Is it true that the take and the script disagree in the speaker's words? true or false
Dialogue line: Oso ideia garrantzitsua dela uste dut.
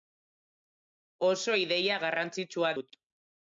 true